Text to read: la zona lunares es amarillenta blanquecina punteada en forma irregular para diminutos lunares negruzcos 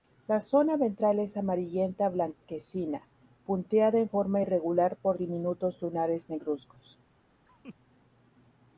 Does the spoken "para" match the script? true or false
false